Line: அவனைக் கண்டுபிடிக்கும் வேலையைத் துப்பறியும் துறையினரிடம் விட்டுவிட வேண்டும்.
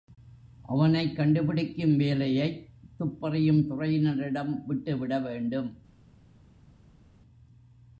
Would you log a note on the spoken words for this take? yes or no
no